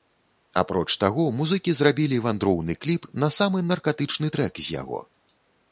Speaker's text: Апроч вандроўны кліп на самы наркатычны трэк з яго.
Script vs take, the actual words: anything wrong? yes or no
yes